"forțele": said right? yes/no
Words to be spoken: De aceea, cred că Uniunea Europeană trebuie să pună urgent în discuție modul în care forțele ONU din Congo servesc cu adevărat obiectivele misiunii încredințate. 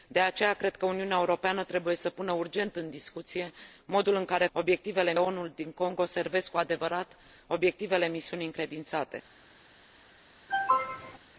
no